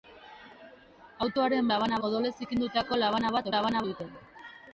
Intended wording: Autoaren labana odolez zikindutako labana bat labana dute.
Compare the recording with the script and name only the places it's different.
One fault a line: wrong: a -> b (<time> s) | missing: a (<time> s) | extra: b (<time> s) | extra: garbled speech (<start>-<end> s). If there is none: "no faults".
no faults